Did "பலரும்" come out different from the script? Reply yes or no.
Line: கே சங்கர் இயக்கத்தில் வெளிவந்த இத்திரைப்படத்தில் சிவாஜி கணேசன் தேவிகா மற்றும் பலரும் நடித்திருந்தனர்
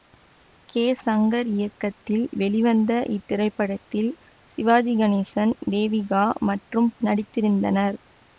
yes